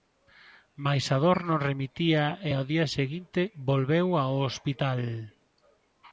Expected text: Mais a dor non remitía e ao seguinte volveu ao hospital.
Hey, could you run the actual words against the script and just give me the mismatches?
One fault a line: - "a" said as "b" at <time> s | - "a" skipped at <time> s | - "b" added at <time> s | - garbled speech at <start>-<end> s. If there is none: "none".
- "día" added at 2.7 s